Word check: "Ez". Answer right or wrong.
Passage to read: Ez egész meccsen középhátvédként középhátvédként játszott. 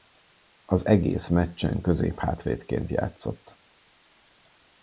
wrong